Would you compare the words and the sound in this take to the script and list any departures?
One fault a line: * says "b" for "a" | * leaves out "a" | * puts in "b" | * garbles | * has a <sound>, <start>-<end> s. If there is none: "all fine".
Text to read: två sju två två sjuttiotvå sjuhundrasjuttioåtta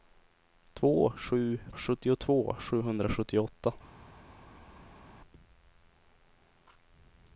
* leaves out "två två"